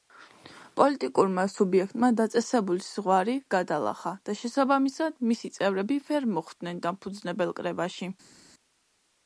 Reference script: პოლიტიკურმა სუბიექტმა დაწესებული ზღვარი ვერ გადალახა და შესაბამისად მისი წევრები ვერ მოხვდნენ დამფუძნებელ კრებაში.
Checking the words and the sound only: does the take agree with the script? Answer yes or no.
no